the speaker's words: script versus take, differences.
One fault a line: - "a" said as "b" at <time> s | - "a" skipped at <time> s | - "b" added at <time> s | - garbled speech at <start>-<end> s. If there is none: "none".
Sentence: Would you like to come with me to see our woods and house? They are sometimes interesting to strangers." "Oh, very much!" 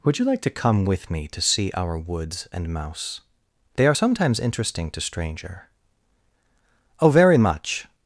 - "house" said as "mouse" at 2.7 s
- "strangers" said as "stranger" at 5.0 s